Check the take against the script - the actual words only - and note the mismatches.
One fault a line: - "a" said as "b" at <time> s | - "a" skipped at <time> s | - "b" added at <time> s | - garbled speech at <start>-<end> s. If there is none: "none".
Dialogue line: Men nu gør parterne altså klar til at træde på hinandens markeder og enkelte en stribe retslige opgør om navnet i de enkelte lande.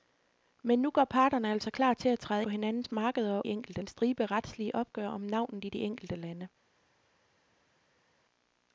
none